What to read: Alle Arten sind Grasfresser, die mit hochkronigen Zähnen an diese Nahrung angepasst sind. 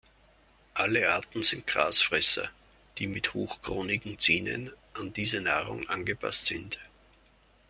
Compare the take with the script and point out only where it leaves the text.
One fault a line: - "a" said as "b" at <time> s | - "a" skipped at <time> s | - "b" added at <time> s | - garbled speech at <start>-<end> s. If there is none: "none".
none